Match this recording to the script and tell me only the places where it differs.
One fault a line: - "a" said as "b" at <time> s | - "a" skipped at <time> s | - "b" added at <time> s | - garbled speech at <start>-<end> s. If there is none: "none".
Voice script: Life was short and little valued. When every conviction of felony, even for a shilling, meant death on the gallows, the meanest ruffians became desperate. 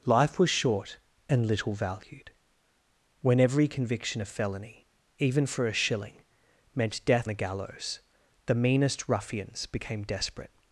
- "on" skipped at 7.3 s